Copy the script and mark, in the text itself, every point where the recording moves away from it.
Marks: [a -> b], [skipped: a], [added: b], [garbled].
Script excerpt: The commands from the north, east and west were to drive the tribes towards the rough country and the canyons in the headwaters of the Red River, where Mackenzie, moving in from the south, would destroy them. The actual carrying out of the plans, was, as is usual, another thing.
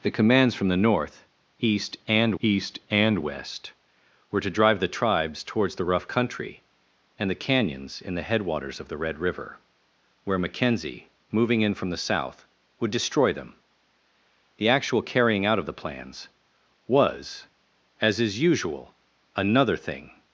The commands from the north, east and [added: east and] west were to drive the tribes towards the rough country and the canyons in the headwaters of the Red River, where Mackenzie, moving in from the south, would destroy them. The actual carrying out of the plans, was, as is usual, another thing.